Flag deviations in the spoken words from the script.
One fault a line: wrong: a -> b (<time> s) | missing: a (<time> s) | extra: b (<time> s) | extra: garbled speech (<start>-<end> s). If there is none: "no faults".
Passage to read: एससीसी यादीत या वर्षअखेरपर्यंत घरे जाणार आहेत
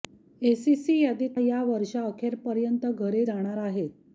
no faults